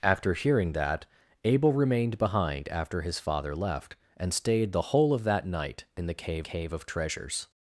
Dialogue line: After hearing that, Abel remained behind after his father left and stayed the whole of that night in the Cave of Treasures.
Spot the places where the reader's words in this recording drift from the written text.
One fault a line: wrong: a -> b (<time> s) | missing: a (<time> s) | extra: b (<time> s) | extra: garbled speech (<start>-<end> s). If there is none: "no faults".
extra: Cave (6.4 s)